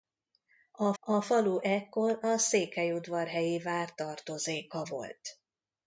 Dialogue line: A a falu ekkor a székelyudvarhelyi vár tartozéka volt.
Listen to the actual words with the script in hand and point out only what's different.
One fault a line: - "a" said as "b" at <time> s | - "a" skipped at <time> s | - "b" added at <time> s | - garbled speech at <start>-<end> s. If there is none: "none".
none